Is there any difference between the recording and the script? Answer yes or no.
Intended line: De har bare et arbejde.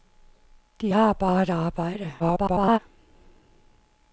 yes